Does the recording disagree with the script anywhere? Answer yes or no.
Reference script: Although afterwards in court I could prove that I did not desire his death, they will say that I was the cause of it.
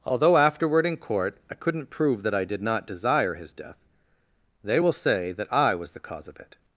yes